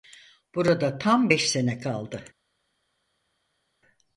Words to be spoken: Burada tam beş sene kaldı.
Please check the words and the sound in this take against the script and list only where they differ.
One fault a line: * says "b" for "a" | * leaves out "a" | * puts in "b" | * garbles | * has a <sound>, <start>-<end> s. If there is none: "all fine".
all fine